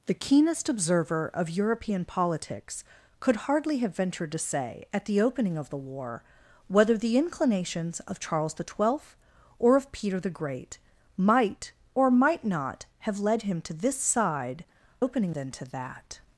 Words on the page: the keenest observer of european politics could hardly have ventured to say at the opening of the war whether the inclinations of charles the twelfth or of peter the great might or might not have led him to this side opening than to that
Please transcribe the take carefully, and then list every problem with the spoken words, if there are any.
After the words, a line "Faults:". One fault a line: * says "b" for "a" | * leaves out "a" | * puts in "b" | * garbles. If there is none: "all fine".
the keenest observer of european politics could hardly have ventured to say at the opening of the war whether the inclinations of charles the twelfth or of peter the great might or might not have led him to this side opening than to that
Faults:
all fine